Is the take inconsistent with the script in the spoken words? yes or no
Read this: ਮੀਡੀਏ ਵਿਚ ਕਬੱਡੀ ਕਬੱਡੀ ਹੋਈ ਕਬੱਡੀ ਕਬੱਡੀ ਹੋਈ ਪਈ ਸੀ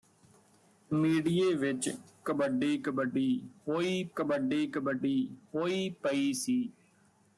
no